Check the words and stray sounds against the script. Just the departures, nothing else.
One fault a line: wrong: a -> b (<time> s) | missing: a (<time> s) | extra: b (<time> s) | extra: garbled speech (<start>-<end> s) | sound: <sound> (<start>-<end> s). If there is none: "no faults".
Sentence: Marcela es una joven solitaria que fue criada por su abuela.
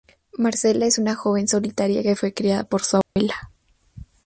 sound: dropout (3.0-3.2 s)